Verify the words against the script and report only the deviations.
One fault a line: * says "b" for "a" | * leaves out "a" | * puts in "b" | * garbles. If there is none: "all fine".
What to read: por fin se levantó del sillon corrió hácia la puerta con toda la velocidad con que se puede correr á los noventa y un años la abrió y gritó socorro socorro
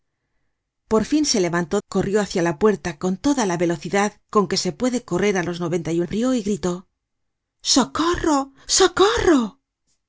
* leaves out "del sillon"
* leaves out "años la"